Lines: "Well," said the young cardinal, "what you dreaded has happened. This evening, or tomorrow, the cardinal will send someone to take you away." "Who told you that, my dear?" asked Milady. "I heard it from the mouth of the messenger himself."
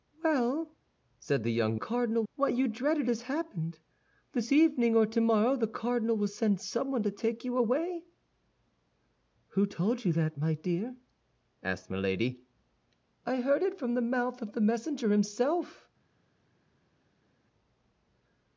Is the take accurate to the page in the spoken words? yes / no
yes